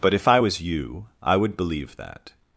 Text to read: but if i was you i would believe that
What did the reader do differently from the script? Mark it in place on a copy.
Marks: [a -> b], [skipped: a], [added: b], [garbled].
but if i was you i would believe that